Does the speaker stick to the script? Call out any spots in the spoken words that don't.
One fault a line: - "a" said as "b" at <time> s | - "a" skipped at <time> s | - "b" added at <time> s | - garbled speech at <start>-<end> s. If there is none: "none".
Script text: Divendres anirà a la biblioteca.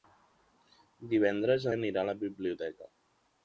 none